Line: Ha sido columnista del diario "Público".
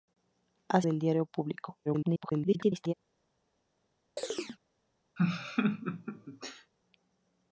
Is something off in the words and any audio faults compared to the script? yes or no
yes